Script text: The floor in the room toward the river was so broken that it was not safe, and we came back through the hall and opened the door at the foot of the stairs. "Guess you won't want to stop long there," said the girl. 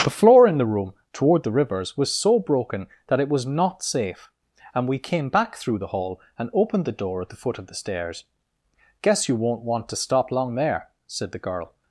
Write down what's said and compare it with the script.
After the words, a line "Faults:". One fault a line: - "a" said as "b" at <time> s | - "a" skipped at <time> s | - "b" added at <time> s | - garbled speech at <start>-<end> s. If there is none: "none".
The floor in the room toward the rivers was so broken that it was not safe, and we came back through the hall and opened the door at the foot of the stairs. "Guess you won't want to stop long there," said the girl.
Faults:
- "river" said as "rivers" at 1.5 s